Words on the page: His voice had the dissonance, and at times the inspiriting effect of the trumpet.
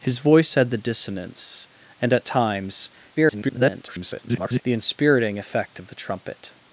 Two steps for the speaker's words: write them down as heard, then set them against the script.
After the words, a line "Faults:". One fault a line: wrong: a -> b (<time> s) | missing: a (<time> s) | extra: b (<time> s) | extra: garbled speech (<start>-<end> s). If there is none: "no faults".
His voice had the dissonance, and at times [garbled] the inspiriting effect of the trumpet.
Faults:
extra: garbled speech (3.2-4.6 s)